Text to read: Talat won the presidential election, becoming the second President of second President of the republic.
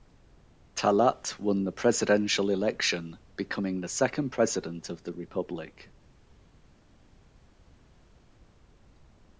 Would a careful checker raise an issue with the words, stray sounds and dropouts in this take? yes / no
yes